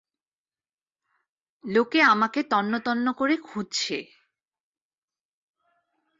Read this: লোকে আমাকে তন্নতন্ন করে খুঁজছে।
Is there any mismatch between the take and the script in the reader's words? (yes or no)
no